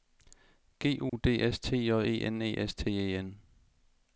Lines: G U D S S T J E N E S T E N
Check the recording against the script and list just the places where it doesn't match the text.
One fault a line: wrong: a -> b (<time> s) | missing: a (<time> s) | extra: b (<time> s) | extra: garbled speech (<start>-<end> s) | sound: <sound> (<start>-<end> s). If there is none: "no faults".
sound: dropout (1.1-1.1 s)
missing: S (1.6 s)